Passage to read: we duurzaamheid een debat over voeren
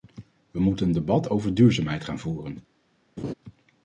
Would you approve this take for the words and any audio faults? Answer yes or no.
no